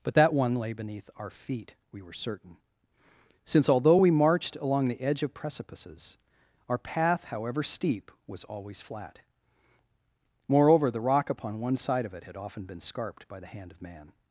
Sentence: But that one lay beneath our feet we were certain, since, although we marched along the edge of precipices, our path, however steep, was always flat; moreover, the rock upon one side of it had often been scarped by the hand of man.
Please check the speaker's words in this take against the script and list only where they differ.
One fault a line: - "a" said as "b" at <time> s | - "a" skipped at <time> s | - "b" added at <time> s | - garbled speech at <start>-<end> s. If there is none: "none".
none